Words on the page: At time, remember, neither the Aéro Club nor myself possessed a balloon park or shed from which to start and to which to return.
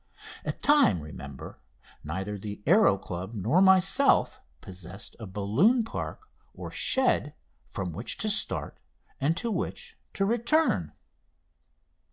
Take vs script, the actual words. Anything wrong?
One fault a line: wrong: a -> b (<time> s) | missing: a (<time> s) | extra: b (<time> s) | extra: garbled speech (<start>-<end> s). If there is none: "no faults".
no faults